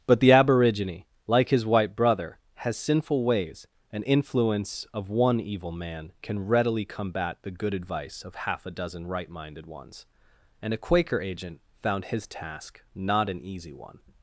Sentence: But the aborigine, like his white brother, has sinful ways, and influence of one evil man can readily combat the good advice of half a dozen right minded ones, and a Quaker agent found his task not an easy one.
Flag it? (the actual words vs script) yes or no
no